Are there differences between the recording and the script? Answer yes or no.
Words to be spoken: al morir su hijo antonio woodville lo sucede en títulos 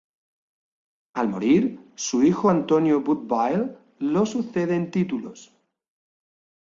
no